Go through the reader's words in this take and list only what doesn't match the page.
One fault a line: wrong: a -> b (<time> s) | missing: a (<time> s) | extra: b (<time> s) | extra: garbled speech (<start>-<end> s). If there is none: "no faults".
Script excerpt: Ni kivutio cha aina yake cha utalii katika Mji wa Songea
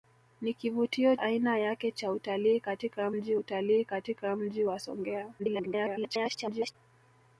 missing: cha (1.1 s)
extra: utalii katika Mji (3.3 s)
extra: garbled speech (5.4-6.8 s)